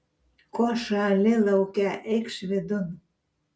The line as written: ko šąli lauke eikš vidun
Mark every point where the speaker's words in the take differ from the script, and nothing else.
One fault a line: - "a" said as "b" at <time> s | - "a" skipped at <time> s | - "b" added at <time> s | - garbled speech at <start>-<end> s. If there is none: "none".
none